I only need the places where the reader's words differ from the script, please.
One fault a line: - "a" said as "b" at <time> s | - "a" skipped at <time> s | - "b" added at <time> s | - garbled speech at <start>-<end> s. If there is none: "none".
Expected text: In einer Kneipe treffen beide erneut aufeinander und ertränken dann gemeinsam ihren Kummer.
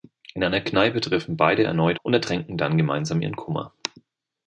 - "aufeinander" skipped at 2.0 s